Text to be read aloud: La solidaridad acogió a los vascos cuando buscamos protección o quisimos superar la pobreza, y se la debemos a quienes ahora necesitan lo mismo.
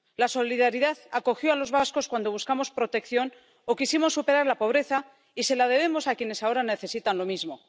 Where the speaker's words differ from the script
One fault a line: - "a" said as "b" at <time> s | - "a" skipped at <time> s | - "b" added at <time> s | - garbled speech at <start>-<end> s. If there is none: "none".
none